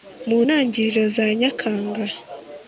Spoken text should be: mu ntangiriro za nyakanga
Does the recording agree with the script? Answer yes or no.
yes